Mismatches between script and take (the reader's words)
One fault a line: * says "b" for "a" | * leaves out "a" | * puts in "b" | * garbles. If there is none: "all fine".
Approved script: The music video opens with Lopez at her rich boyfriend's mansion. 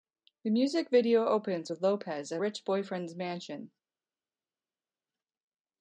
* leaves out "her"